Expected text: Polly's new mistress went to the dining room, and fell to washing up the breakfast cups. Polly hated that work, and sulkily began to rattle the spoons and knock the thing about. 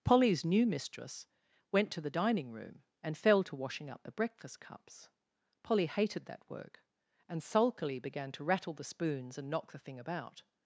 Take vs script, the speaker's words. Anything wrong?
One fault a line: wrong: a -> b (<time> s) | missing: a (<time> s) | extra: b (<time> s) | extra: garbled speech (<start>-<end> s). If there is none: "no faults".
no faults